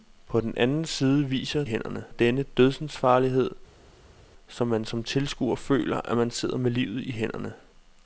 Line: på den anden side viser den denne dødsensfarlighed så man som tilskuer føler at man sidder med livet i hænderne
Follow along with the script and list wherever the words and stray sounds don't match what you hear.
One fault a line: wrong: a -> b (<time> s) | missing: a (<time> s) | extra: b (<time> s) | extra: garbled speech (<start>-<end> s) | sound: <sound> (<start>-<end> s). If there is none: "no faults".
wrong: den -> hænderne (1.6 s)